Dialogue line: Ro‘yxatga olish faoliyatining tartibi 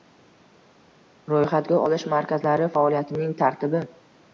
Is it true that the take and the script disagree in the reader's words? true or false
true